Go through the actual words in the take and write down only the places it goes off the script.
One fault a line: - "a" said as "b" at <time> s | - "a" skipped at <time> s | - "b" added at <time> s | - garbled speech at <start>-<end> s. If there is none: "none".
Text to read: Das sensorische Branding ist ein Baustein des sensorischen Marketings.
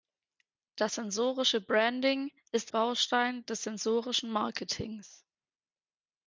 - "ein" skipped at 2.7 s